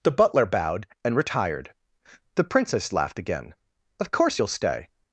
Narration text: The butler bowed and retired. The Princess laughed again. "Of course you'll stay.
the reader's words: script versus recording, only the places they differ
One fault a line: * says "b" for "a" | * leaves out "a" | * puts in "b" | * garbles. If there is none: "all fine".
all fine